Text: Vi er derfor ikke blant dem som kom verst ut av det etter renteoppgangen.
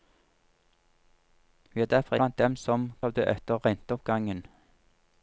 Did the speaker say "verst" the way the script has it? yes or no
no